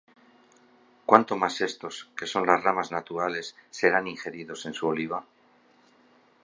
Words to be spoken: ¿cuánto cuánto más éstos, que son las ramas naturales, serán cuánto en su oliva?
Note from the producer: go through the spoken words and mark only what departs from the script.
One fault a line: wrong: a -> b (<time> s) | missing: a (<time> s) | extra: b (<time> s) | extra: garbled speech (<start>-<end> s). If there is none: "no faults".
missing: cuánto (1.4 s)
wrong: cuánto -> ingeridos (4.1 s)